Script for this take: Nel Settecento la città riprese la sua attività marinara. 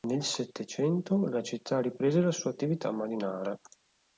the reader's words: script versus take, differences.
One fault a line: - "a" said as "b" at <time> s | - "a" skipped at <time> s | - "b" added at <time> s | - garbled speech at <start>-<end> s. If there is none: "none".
none